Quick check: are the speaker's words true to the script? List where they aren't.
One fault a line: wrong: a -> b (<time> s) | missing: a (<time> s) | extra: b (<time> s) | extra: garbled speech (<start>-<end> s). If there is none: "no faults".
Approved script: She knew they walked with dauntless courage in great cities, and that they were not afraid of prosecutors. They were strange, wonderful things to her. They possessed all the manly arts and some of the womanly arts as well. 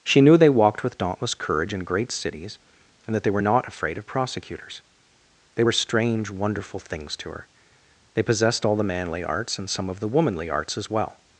no faults